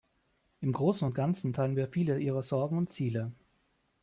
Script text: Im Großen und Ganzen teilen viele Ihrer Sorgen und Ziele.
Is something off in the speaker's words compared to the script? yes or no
yes